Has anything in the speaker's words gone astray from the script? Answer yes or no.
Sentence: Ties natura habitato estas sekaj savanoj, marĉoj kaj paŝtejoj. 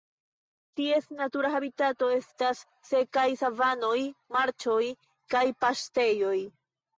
no